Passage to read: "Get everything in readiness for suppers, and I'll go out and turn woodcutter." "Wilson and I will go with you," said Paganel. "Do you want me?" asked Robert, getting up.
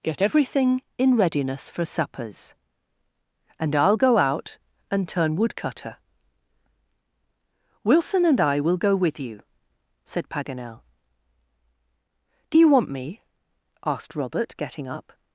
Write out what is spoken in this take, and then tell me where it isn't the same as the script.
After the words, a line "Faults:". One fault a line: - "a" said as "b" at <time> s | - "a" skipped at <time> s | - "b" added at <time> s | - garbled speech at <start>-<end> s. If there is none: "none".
"Get everything in readiness for suppers, and I'll go out and turn woodcutter." "Wilson and I will go with you," said Paganel. "Do you want me?" asked Robert, getting up.
Faults:
none